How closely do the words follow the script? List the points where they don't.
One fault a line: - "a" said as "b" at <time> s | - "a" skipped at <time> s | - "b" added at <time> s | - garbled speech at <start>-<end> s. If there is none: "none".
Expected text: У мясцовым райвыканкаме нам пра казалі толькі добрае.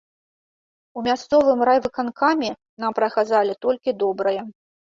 none